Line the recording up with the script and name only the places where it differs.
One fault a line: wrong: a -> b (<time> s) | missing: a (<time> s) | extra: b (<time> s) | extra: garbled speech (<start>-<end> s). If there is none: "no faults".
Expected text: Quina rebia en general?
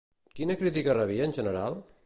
extra: crítica (0.6 s)